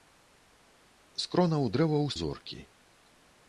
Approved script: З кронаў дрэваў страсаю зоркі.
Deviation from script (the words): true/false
true